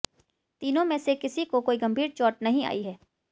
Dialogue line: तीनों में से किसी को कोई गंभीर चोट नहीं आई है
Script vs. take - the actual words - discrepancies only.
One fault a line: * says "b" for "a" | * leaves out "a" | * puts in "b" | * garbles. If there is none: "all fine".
all fine